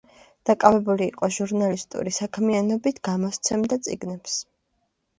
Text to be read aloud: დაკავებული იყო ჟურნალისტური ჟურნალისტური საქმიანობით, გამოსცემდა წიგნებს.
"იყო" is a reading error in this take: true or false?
false